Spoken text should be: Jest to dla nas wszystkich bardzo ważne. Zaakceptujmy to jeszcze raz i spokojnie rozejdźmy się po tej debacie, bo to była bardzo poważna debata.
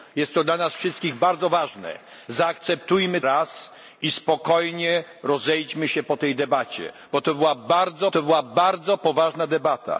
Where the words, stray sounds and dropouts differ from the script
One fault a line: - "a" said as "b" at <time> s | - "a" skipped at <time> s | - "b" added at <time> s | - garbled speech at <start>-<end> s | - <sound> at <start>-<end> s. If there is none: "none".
- "to jeszcze" skipped at 3.2 s
- "to była bardzo" added at 8.1 s